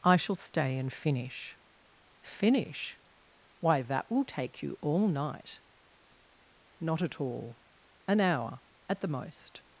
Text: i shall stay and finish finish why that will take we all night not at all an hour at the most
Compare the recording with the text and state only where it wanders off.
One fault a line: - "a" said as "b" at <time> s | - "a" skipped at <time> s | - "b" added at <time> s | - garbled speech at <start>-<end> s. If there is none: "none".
- "we" said as "you" at 4.6 s